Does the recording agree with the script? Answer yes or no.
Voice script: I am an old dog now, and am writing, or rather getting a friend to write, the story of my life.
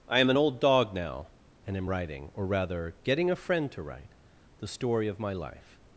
yes